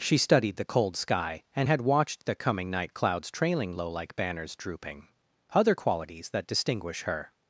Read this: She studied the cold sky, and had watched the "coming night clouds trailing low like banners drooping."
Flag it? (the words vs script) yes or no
yes